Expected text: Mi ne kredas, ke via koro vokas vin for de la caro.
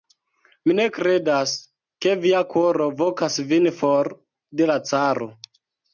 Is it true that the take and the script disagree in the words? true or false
false